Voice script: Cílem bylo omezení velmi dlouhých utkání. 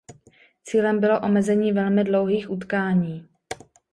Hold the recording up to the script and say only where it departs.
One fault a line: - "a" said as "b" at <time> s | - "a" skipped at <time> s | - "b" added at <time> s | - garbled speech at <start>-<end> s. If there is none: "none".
none